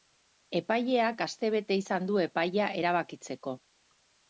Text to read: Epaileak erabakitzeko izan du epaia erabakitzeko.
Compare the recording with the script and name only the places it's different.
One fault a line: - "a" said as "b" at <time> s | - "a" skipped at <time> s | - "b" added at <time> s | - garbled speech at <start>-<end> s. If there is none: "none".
- "erabakitzeko" said as "astebete" at 1.3 s